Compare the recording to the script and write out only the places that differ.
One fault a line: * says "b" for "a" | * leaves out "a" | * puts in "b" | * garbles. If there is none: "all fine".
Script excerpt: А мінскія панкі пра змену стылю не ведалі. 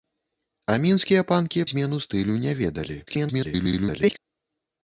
* leaves out "пра"
* garbles